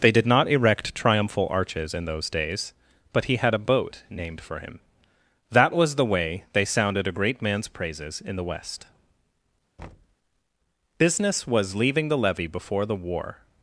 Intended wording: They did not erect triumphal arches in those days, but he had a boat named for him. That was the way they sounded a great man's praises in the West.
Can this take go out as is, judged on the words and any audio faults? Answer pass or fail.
fail